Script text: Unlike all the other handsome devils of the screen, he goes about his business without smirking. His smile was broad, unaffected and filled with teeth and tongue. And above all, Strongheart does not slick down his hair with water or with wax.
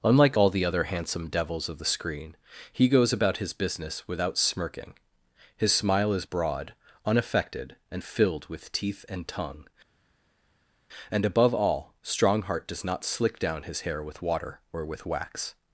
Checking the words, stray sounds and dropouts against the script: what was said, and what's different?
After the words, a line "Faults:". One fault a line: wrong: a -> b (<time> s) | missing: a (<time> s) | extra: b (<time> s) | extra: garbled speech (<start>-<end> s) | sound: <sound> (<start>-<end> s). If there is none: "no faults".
Unlike all the other handsome devils of the screen, he goes about his business without smirking. His smile is broad, unaffected and filled with teeth and tongue. And above all, Strongheart does not slick down his hair with water or with wax.
Faults:
wrong: was -> is (6.1 s)